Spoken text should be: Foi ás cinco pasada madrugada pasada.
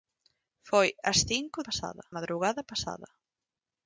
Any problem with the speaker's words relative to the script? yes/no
no